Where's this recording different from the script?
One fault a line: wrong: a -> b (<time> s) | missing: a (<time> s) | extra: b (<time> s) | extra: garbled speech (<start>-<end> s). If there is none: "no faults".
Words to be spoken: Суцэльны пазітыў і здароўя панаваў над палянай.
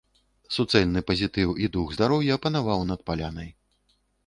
extra: дух (1.8 s)